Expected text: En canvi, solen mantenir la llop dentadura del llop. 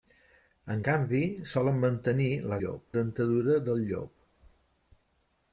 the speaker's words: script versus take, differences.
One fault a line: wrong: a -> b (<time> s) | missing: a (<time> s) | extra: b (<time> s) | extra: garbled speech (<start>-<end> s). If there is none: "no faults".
no faults